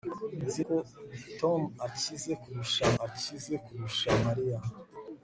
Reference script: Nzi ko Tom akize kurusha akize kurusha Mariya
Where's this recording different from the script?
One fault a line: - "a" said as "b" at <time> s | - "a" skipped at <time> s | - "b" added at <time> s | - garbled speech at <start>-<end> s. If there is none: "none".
none